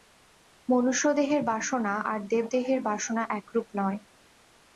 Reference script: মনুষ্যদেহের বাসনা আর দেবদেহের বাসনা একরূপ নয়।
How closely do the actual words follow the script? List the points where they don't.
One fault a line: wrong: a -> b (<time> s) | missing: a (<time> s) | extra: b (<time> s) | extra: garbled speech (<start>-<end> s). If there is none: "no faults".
no faults